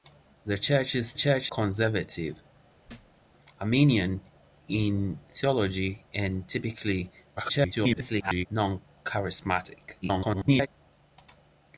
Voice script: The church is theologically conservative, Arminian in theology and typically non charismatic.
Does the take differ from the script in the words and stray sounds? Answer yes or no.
yes